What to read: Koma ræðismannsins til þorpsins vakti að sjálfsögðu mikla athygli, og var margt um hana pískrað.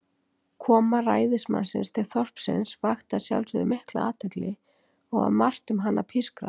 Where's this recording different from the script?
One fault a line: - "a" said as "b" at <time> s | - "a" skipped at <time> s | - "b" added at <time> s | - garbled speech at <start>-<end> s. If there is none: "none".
none